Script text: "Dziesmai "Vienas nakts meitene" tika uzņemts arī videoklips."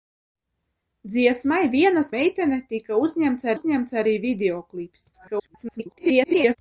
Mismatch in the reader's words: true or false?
true